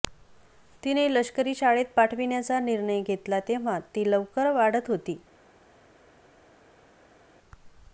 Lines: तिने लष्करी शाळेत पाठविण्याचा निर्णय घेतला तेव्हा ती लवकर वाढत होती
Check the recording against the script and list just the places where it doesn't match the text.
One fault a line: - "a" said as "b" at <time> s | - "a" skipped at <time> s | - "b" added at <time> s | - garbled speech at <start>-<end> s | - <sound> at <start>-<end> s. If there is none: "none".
none